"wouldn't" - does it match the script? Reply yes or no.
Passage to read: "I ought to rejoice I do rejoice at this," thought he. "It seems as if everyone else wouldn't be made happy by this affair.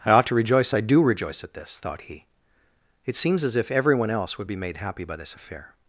no